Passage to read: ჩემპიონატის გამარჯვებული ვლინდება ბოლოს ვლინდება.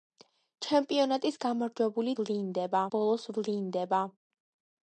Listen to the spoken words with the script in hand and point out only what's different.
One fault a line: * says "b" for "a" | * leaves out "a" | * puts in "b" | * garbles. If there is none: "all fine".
all fine